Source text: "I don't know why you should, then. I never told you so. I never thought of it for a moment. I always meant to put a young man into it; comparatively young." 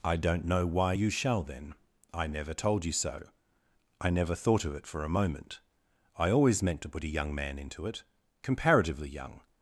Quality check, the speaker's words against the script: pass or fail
fail